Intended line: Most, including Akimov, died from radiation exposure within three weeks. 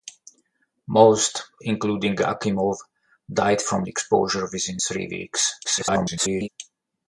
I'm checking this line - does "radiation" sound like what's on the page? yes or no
no